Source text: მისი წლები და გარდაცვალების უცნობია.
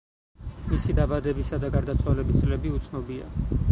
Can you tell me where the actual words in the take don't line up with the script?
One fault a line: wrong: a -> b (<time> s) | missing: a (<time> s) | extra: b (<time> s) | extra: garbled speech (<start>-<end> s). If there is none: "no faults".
wrong: წლები -> დაბადებისა (1.0 s)
extra: წლები (2.4 s)